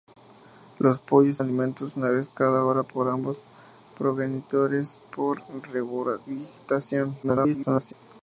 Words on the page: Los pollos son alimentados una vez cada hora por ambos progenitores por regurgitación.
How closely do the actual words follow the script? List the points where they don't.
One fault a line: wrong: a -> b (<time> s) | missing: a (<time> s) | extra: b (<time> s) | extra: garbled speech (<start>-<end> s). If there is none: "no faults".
missing: son (1.4 s)
extra: garbled speech (7.2-7.9 s)